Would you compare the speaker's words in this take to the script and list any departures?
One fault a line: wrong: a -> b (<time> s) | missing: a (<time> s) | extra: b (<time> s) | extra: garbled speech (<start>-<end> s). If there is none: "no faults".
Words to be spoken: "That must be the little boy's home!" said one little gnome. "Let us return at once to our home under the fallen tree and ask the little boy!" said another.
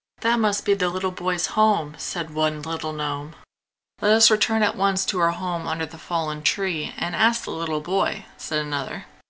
no faults